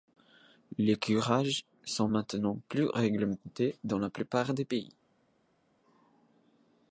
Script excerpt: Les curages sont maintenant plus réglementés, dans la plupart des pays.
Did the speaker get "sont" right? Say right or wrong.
right